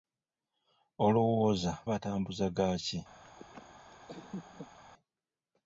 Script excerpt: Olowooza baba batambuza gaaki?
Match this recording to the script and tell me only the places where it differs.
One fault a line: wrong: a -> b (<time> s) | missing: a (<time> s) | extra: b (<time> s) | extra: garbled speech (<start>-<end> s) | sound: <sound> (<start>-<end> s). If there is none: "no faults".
missing: baba (1.7 s)
sound: laugh (3.2-4.8 s)